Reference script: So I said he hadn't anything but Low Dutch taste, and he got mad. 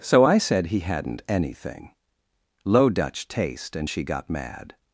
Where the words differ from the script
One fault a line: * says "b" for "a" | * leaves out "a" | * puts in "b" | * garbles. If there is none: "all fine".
* leaves out "but"
* says "she" for "he"